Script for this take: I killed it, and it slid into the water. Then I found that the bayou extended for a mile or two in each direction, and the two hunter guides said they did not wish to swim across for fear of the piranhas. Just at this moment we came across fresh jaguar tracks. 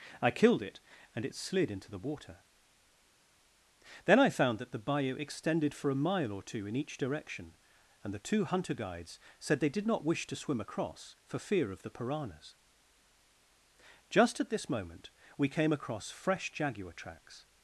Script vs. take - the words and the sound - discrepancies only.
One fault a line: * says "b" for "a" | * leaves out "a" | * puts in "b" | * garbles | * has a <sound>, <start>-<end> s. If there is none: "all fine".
all fine